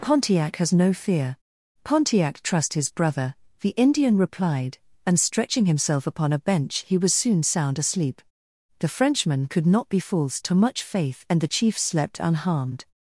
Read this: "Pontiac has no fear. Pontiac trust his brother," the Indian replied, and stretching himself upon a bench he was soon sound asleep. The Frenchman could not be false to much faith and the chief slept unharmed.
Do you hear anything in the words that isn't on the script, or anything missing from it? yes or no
no